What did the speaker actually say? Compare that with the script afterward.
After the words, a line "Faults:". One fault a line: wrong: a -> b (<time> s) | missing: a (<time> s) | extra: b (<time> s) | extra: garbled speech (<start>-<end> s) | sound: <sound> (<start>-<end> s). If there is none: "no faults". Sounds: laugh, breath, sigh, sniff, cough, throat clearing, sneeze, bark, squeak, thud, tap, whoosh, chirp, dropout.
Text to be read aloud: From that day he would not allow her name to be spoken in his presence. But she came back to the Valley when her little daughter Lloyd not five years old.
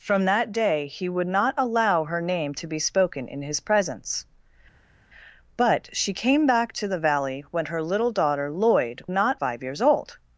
From that day he would not allow her name to be spoken in his presence. But she came back to the Valley when her little daughter Lloyd not five years old.
Faults:
no faults